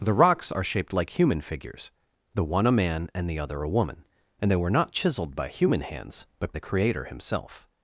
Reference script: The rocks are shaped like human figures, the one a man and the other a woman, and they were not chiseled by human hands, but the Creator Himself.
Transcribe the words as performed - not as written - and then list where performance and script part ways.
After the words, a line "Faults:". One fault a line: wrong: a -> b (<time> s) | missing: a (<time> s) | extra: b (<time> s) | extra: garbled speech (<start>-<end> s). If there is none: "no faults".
The rocks are shaped like human figures, the one a man and the other a woman, and they were not chiseled by human hands, but the Creator Himself.
Faults:
no faults